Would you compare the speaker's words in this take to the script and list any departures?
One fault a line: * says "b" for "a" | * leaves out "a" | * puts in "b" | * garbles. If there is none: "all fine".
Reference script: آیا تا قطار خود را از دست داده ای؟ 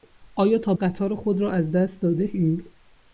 all fine